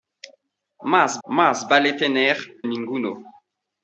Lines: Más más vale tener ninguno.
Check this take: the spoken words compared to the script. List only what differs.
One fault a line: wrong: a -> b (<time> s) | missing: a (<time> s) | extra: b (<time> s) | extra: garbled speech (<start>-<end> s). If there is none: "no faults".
no faults